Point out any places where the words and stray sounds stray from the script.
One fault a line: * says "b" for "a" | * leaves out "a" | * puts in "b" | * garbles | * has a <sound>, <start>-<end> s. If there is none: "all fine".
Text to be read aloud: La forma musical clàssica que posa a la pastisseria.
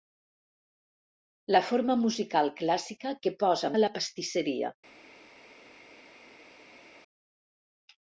all fine